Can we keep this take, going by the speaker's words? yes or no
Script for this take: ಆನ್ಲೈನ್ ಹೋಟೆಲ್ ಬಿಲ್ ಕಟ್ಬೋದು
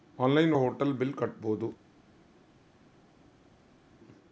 yes